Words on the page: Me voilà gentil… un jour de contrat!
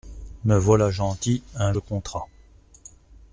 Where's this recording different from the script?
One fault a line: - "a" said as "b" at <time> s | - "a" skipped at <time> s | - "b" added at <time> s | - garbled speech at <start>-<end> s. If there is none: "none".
- "jour" skipped at 1.7 s